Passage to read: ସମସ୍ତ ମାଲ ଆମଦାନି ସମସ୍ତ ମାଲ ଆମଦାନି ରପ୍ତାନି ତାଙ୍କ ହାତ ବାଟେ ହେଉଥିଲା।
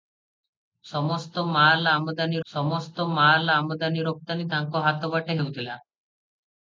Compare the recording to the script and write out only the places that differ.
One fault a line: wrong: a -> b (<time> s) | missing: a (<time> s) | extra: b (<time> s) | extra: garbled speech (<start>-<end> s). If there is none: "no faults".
no faults